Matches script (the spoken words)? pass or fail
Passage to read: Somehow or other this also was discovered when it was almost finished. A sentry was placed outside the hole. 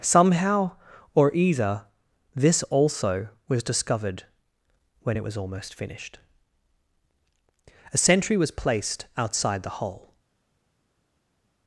fail